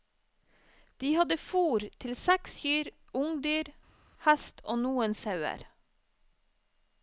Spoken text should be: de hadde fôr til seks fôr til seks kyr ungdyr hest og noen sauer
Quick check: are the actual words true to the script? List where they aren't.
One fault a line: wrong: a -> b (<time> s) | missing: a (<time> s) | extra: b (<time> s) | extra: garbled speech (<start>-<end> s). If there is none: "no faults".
missing: fôr til seks (2.5 s)